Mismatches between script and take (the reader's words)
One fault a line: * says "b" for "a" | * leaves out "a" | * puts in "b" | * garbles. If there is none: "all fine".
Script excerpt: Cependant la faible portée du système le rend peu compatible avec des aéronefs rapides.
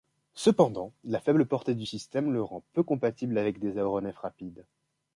all fine